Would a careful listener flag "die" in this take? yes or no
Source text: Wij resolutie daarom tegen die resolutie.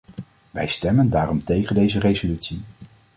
yes